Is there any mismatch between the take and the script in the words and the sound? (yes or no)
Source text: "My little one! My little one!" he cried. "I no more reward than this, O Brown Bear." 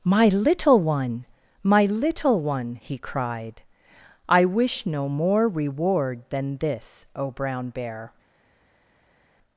yes